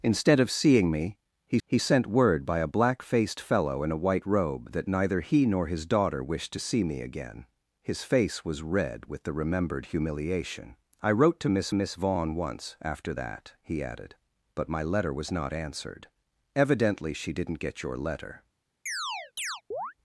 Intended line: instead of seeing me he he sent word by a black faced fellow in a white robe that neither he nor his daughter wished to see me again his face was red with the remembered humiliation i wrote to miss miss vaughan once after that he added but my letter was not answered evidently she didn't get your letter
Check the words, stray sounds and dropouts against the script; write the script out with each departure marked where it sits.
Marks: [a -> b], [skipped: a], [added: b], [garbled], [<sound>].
instead of seeing me he he sent word by a black faced fellow in a white robe that neither he nor his daughter wished to see me again his face was red with the remembered humiliation i wrote to miss miss vaughan once after that he added but my letter was not answered evidently she didn't get your letter [chirp]